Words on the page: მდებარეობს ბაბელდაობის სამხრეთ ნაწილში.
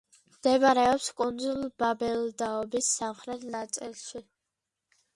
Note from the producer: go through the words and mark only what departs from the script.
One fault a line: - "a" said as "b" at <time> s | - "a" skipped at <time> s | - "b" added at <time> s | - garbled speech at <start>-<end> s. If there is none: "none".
- "კუნძულ" added at 1.2 s